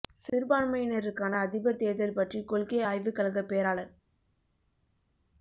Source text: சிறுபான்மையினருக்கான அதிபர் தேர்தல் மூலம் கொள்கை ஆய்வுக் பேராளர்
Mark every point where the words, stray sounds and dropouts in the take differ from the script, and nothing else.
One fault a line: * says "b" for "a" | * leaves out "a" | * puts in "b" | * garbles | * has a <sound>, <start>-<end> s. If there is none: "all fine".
* says "பற்றி" for "மூலம்"
* puts in "கழகப்"